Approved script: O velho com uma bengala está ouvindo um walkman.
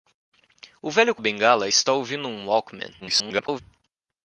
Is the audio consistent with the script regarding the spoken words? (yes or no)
no